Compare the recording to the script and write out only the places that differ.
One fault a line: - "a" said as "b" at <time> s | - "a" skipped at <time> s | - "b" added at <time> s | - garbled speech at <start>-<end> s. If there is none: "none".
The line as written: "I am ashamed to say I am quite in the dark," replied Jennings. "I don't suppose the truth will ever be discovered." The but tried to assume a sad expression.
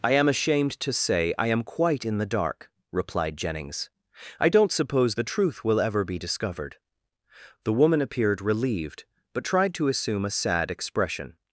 - "woman appeared relieved" added at 7.7 s